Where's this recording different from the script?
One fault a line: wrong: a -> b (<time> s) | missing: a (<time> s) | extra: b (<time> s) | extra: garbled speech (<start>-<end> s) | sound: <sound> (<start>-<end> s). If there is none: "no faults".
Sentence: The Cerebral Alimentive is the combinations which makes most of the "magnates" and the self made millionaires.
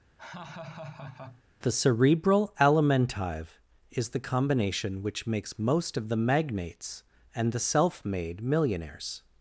sound: laugh (0.2-1.4 s)
wrong: combinations -> combination (4.2 s)